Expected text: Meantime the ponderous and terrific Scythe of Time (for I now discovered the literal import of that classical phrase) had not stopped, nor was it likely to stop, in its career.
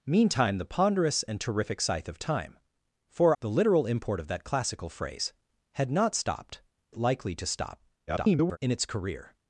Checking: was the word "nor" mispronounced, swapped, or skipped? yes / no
yes